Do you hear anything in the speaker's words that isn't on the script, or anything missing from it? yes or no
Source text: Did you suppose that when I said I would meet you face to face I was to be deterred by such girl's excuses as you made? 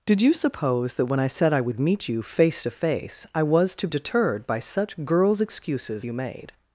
yes